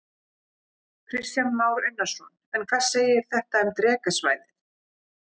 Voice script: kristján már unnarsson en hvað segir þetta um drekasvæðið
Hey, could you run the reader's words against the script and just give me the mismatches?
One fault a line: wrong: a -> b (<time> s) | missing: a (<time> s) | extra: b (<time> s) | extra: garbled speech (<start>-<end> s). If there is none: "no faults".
no faults